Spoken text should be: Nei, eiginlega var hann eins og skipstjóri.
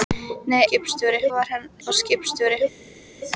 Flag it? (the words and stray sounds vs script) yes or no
yes